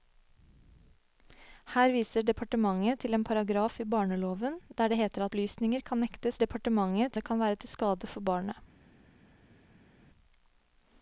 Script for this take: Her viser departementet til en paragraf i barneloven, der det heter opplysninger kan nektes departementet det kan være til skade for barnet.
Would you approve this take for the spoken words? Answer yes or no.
yes